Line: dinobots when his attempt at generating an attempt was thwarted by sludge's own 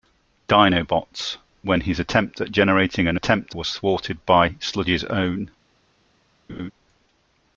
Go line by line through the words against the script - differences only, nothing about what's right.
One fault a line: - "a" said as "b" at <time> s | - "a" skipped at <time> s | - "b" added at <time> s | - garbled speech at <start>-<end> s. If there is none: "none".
none